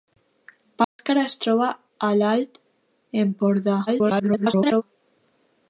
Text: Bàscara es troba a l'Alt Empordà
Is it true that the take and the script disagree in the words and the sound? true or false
true